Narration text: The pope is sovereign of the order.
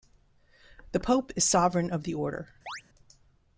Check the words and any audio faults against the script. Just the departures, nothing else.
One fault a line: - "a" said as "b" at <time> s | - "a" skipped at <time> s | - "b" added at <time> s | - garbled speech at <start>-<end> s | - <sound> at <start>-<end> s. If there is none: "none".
- chirp at 2.7-2.8 s